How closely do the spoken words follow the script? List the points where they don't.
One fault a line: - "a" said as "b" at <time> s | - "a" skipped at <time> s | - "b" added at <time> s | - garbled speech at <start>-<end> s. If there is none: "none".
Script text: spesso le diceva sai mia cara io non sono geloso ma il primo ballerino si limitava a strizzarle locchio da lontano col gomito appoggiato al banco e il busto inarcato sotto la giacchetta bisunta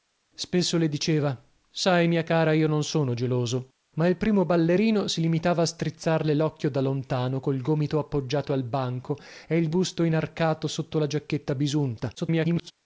- garbled speech at 12.2-12.7 s